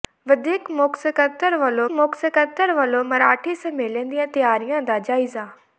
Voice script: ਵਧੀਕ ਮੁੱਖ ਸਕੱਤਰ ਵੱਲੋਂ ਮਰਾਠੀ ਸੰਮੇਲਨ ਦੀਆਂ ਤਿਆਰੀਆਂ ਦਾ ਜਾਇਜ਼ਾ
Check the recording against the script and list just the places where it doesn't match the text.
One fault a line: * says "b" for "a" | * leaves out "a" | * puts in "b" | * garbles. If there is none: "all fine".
* puts in "ਮੁੱਖ ਸਕੱਤਰ ਵੱਲੋਂ"